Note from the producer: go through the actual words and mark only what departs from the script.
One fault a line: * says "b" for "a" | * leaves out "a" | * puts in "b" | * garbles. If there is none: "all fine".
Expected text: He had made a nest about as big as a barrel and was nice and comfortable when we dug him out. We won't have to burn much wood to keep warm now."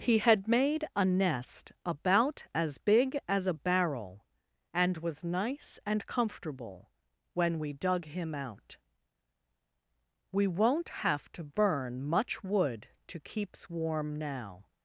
* says "keeps" for "keep"